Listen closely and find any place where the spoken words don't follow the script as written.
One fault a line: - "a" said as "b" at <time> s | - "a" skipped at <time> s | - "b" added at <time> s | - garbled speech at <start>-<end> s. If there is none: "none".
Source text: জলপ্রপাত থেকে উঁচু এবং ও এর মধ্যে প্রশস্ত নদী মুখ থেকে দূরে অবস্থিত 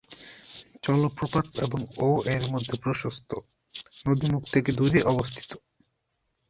- "থেকে উঁচু" skipped at 1.4 s